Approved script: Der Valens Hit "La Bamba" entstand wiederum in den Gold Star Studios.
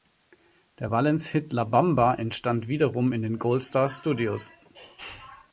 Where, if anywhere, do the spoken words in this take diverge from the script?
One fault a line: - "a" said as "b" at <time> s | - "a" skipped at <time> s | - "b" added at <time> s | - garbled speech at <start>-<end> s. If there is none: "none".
none